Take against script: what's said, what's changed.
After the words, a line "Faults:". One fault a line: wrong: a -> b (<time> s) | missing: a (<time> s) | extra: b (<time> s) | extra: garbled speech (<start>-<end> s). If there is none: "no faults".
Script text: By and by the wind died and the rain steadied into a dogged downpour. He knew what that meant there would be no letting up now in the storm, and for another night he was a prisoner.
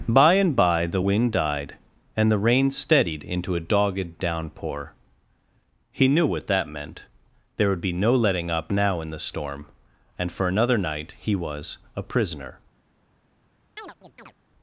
By and by the wind died and the rain steadied into a dogged downpour. He knew what that meant there would be no letting up now in the storm, and for another night he was a prisoner.
Faults:
no faults